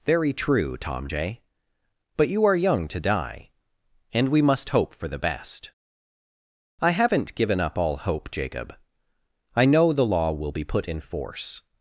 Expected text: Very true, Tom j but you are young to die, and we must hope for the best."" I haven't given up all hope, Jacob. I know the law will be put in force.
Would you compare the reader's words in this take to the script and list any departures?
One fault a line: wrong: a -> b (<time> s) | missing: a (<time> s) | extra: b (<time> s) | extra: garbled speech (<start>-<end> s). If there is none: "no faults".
no faults